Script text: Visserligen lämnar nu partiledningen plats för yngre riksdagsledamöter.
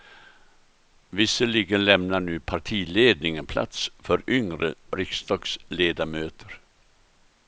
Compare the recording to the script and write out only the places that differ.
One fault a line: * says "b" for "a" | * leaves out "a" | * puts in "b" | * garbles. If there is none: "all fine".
all fine